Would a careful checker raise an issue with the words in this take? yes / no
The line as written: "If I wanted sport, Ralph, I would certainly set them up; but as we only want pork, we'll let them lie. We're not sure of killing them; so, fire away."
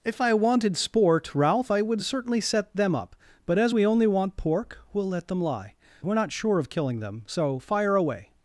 no